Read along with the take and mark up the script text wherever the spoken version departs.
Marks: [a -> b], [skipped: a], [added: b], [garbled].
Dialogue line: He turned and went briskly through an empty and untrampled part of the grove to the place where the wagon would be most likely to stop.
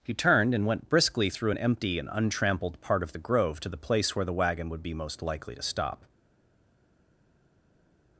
He turned and went briskly through an empty and untrampled part of the grove to the place where the wagon would be most likely to stop.